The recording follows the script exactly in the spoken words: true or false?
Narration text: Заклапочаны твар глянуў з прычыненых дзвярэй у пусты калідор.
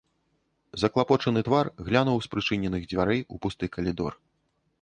true